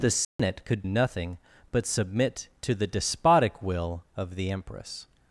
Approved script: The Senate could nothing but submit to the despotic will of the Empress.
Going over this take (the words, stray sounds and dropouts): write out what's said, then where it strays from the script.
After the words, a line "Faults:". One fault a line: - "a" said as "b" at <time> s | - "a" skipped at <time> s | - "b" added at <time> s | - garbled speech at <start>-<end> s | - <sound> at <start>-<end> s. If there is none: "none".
The Senate could nothing but submit to the despotic will of the Empress.
Faults:
- dropout at 0.2-0.4 s